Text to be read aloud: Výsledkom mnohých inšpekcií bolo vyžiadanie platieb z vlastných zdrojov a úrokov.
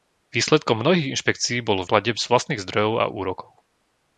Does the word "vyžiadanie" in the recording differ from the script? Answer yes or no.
yes